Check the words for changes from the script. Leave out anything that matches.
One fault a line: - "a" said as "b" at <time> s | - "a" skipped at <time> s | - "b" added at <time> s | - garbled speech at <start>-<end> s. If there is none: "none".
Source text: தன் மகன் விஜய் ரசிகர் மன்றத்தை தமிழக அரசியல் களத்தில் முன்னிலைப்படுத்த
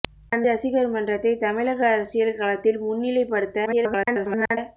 - "மகன் விஜய்" skipped at 0.5 s
- garbled speech at 3.7-4.6 s